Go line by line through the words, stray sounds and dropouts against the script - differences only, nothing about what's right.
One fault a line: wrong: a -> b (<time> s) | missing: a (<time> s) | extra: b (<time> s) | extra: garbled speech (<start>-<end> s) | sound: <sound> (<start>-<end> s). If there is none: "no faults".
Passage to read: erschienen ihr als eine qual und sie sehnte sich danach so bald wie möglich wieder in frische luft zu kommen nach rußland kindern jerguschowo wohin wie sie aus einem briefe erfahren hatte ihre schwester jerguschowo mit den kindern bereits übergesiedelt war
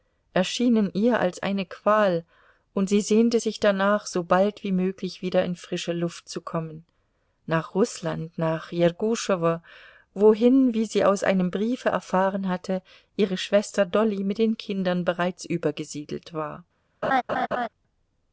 wrong: kindern -> nach (8.4 s)
wrong: jerguschowo -> dolly (13.8 s)
sound: laugh (17.0-17.7 s)